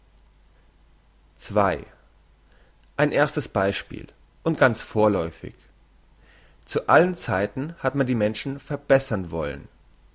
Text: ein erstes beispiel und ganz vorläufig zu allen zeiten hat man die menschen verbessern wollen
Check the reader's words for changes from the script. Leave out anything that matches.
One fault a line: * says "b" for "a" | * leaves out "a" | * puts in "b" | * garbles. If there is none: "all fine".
all fine